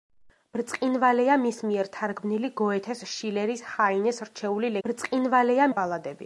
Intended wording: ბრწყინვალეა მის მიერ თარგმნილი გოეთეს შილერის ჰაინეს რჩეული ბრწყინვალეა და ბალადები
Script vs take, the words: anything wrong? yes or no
no